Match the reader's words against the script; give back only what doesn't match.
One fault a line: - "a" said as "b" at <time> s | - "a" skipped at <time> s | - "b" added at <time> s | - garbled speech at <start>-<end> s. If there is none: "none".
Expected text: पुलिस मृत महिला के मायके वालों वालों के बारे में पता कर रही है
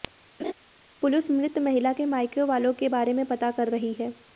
- "वालों" skipped at 2.7 s